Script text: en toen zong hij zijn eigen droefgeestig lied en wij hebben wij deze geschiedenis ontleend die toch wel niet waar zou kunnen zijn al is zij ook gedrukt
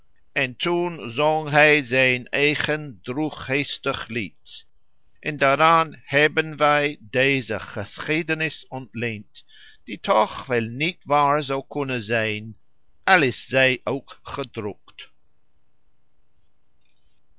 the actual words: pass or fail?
fail